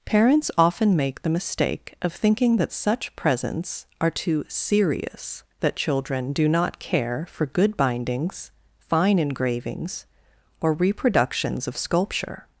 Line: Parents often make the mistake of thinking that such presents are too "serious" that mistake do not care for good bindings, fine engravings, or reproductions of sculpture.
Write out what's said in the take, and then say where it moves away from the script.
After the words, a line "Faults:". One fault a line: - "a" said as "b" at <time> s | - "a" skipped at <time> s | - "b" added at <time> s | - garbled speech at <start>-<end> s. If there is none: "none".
Parents often make the mistake of thinking that such presents are too "serious" that children do not care for good bindings, fine engravings, or reproductions of sculpture.
Faults:
- "mistake" said as "children" at 5.8 s